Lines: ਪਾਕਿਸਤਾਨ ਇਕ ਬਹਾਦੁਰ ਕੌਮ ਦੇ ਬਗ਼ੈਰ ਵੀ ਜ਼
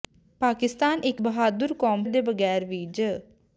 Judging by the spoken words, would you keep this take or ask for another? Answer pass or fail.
pass